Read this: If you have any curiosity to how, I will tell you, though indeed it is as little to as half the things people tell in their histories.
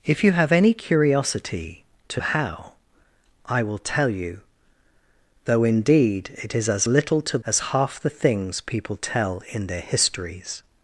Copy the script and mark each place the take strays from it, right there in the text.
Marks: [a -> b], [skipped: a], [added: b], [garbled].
If you have any curiosity to how, I will tell you, though indeed it is as little to as half the things people tell in their histories.